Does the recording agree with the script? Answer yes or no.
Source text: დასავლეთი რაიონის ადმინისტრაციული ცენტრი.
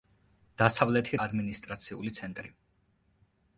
no